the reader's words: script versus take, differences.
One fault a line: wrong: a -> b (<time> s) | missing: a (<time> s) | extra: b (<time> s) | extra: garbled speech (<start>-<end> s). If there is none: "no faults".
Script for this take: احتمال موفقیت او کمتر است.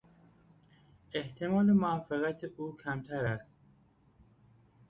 no faults